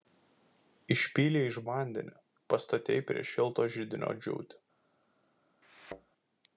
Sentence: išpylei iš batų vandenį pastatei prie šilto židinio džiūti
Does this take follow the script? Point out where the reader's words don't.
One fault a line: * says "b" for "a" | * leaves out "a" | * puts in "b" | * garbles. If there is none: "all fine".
* leaves out "batų"